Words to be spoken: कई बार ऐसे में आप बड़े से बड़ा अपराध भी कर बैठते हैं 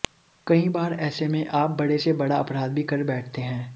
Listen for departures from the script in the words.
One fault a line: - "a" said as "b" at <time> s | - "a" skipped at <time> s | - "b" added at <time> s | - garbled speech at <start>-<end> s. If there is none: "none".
none